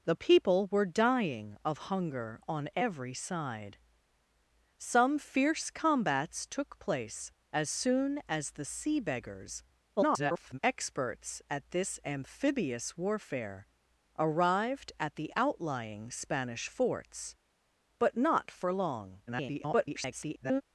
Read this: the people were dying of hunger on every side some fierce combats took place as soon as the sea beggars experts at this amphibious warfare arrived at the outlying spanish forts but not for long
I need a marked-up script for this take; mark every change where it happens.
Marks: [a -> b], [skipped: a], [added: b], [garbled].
the people were dying of hunger on every side some fierce combats took place as soon as the sea beggars [garbled] experts at this amphibious warfare arrived at the outlying spanish forts but not for long [garbled]